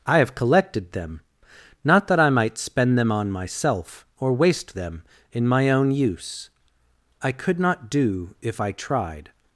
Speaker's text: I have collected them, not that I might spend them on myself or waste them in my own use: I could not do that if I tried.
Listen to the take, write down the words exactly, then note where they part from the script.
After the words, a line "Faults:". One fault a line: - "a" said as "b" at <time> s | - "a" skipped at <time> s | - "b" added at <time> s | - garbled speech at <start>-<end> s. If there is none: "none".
I have collected them, not that I might spend them on myself or waste them in my own use: I could not do if I tried.
Faults:
- "that" skipped at 8.3 s